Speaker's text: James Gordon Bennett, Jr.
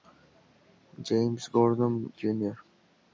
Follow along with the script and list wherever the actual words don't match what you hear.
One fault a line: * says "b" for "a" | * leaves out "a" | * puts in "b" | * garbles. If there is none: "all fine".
* leaves out "Bennett"